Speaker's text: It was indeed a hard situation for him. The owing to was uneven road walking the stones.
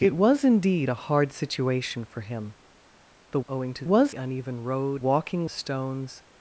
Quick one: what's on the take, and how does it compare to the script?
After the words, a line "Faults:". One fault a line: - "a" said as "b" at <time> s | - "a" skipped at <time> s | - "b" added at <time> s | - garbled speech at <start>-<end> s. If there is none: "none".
It was indeed a hard situation for him. The owing to was uneven road walking the stones.
Faults:
none